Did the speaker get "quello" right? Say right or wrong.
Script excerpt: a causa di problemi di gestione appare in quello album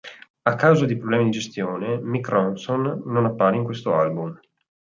wrong